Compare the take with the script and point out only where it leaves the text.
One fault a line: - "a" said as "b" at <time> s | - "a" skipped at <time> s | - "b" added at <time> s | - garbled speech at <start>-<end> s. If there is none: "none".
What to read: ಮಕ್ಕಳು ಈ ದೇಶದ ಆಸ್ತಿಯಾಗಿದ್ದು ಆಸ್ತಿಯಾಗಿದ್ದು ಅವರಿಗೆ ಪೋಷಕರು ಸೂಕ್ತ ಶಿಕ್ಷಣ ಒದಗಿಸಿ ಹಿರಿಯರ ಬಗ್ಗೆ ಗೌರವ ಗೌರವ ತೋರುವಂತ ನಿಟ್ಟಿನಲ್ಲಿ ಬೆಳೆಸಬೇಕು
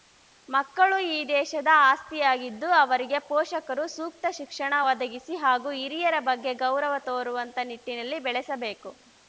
- "ಆಸ್ತಿಯಾಗಿದ್ದು" skipped at 2.7 s
- "ಹಾಗೂ" added at 5.4 s
- "ಗೌರವ" skipped at 7.0 s